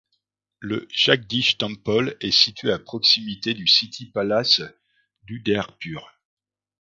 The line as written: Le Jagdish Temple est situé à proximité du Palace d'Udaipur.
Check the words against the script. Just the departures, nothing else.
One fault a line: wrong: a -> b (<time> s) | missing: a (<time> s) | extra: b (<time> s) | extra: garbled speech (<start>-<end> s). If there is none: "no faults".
extra: City (3.7 s)